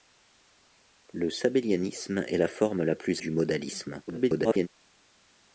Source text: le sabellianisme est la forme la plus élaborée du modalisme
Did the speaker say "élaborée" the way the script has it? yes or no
no